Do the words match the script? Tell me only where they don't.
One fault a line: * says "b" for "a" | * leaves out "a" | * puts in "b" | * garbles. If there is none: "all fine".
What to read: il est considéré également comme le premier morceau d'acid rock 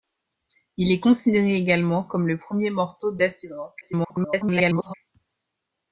* garbles